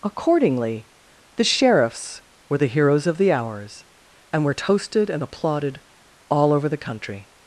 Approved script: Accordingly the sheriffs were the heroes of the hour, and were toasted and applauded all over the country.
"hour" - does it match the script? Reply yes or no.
no